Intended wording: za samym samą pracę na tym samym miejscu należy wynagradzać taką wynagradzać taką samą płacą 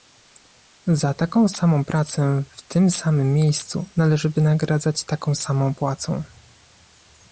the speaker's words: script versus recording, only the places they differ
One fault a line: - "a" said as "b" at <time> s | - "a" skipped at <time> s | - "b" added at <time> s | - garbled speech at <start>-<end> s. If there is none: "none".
- "samym" said as "taką" at 1.1 s
- "na" said as "w" at 2.5 s
- "wynagradzać taką" skipped at 5.3 s